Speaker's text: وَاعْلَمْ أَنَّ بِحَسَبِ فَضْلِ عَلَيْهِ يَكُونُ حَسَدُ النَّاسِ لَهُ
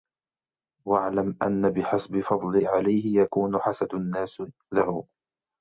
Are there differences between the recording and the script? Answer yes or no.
no